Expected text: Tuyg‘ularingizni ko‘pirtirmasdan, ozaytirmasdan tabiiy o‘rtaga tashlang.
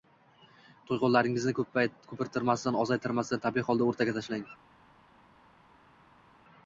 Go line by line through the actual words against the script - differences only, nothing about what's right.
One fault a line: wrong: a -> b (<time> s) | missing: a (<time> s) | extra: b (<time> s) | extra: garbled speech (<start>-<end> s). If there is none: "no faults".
extra: holda (3.7 s)